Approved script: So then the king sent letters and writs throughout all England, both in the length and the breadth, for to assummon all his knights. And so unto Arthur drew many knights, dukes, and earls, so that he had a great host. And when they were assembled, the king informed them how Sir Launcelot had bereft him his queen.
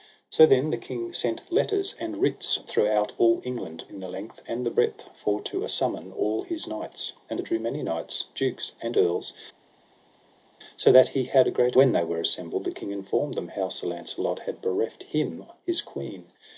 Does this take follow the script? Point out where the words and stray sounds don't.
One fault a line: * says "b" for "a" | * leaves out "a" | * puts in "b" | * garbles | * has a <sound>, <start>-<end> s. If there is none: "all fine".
* leaves out "both"
* leaves out "so unto Arthur"
* leaves out "host And"